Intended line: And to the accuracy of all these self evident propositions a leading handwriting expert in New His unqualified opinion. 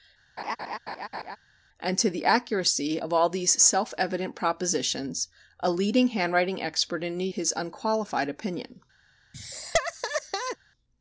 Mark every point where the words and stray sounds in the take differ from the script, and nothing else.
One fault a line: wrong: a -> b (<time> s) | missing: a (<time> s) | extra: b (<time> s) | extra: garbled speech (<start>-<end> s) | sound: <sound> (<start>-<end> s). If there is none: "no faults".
sound: laugh (0.4-1.4 s)
sound: laugh (9.3-10.6 s)